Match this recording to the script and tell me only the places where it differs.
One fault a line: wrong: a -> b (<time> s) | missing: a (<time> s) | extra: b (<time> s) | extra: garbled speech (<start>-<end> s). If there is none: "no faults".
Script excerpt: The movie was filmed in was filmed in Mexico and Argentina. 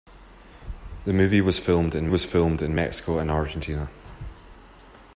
no faults